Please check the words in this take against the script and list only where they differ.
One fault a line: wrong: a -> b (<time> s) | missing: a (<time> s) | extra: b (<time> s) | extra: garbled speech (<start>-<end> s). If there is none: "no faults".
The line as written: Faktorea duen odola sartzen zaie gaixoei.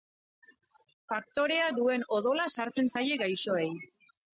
no faults